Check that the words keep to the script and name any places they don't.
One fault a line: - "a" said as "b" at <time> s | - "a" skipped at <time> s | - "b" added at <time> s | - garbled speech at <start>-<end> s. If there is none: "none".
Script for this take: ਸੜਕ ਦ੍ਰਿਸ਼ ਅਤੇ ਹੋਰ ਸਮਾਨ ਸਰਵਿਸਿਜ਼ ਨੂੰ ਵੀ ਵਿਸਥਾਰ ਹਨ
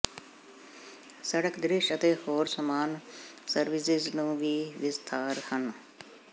none